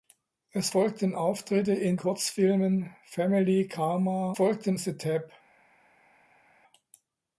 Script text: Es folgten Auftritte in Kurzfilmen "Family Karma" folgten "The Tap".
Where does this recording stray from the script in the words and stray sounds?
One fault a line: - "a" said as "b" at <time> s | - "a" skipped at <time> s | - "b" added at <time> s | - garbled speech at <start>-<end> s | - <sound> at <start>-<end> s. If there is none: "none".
none